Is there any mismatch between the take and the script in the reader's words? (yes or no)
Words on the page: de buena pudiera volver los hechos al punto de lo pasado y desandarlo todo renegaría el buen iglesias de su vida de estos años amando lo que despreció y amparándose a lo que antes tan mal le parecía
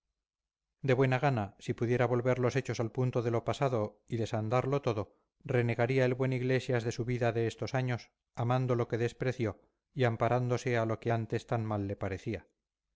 yes